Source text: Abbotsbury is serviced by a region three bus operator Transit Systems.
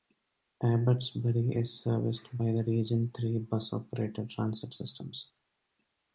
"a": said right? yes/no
no